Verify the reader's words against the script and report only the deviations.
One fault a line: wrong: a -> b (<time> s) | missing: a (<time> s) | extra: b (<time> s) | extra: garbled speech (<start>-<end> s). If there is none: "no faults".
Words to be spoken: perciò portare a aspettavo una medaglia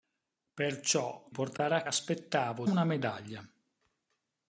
no faults